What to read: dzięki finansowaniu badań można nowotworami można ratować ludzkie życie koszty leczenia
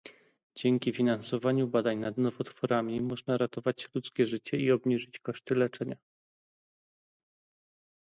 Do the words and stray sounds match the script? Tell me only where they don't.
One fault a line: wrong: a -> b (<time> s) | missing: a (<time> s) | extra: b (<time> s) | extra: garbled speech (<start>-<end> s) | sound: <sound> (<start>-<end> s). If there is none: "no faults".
wrong: można -> nad (2.0 s)
extra: i obniżyć (4.6 s)